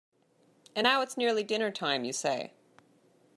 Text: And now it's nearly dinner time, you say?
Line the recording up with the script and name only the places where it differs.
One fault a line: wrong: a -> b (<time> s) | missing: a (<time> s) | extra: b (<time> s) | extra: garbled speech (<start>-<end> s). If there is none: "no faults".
no faults